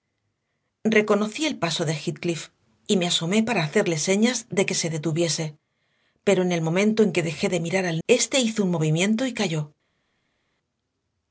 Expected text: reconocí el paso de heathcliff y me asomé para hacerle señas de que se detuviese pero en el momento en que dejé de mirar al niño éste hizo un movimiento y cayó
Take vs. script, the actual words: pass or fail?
fail